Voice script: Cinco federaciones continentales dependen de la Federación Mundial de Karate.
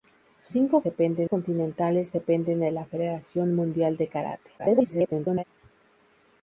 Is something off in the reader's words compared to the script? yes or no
yes